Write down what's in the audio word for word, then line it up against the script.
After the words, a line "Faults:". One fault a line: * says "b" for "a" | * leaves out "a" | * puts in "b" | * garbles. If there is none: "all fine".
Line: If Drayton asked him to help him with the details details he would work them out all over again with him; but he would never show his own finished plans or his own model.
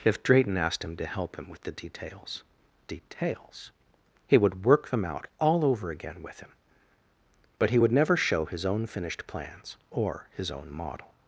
If Drayton asked him to help him with the details details he would work them out all over again with him; but he would never show his own finished plans or his own model.
Faults:
all fine